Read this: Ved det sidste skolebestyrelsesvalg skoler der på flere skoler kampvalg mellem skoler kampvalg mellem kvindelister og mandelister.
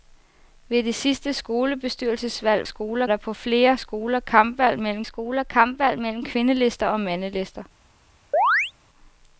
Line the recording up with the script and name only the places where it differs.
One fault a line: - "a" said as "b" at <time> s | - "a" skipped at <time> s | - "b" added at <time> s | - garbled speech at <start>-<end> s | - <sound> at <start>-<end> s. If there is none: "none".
- chirp at 8.3-8.7 s